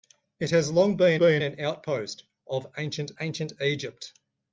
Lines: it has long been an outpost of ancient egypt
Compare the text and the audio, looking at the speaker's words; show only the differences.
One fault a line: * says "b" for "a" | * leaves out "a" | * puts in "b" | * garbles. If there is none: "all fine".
* puts in "been"
* puts in "ancient"